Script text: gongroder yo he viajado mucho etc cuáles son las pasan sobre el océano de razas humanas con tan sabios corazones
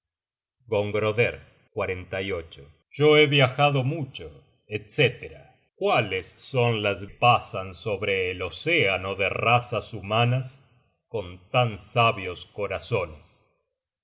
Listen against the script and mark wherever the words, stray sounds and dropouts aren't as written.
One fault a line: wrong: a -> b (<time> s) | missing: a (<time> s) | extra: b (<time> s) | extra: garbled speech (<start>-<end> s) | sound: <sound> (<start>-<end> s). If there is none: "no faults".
no faults